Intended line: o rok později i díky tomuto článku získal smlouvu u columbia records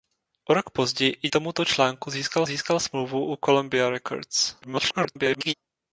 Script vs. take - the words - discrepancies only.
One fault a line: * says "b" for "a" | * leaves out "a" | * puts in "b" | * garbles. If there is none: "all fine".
* leaves out "díky"
* puts in "získal"
* garbles